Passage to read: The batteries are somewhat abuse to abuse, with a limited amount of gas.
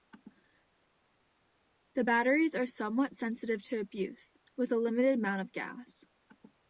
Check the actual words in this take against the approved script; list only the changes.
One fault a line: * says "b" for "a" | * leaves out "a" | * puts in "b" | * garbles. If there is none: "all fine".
* says "sensitive" for "abuse"